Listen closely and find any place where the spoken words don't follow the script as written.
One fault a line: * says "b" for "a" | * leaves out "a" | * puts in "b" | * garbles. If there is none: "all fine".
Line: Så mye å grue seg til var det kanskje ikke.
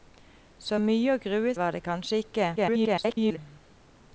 * leaves out "seg til"
* garbles